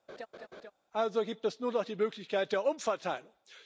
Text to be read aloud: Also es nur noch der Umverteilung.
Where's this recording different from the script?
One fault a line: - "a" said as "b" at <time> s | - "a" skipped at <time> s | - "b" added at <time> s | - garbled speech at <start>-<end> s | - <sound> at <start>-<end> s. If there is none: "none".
- laugh at 0.1-0.7 s
- "gibt" added at 1.2 s
- "die Möglichkeit" added at 1.8 s